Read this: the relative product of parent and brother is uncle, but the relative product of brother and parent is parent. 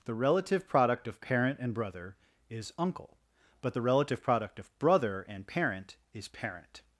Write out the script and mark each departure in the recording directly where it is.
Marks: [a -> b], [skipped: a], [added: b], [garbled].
the relative product of parent and brother is uncle, but the relative product of brother and parent is parent.